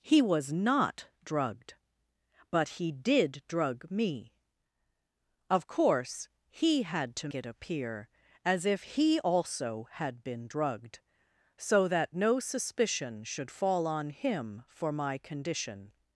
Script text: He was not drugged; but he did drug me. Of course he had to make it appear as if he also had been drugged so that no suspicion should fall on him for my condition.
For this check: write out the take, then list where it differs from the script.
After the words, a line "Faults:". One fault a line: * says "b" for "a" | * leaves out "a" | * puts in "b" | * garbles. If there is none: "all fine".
He was not drugged; but he did drug me. Of course he had to it appear as if he also had been drugged so that no suspicion should fall on him for my condition.
Faults:
* leaves out "make"